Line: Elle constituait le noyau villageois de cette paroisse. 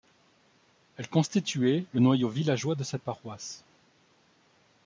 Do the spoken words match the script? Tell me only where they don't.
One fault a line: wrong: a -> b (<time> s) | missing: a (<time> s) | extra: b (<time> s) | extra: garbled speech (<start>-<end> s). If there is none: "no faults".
no faults